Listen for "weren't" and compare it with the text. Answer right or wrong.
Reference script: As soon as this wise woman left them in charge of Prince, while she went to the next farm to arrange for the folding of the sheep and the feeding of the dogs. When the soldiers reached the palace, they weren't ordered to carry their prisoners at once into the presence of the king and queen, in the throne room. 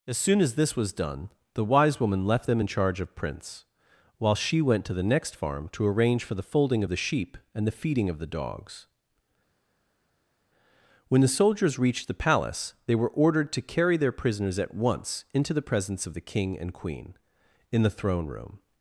wrong